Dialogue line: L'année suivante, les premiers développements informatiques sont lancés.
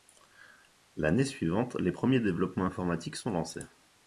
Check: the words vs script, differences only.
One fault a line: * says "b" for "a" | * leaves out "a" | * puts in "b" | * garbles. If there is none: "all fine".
all fine